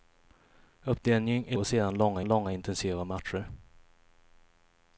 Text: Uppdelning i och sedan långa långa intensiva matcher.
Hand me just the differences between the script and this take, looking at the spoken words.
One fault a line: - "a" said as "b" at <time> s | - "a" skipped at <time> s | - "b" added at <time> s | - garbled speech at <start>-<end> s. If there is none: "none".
none